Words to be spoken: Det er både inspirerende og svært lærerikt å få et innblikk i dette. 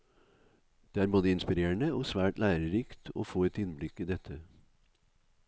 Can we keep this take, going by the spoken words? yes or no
yes